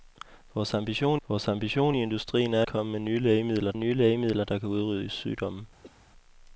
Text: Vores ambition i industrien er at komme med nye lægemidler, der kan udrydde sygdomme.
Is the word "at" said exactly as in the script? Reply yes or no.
no